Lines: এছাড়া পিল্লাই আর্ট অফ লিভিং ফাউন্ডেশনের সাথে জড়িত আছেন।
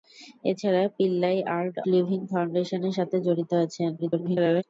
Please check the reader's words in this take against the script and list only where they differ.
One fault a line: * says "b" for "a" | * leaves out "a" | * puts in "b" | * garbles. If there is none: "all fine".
* leaves out "অফ"
* garbles